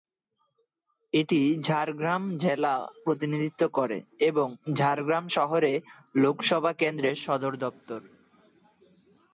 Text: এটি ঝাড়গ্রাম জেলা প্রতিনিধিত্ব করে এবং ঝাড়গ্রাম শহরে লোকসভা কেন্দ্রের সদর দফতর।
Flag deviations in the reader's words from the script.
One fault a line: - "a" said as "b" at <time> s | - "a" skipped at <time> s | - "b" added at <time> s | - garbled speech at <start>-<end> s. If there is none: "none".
none